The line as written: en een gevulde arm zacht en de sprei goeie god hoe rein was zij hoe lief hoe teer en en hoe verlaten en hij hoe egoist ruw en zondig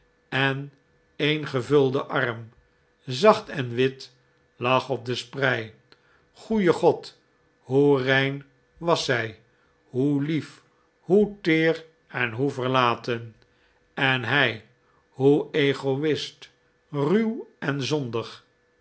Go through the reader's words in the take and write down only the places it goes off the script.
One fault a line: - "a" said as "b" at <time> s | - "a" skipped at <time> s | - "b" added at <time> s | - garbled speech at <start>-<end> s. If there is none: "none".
- "wit lag op" added at 3.7 s
- "en" skipped at 12.3 s